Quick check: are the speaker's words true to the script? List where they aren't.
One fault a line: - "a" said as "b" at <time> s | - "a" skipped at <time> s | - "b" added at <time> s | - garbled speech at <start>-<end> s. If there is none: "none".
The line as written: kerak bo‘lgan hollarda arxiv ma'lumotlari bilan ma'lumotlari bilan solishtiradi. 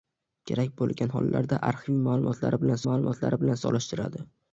none